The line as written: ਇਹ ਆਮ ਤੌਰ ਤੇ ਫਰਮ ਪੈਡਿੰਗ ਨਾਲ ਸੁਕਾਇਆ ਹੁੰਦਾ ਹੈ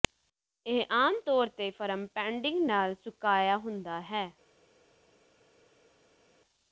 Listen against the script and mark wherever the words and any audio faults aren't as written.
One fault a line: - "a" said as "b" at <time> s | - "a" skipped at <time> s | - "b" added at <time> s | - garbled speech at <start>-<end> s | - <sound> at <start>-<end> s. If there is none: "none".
none